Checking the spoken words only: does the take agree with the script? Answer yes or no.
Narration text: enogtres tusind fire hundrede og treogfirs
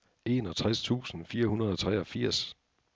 yes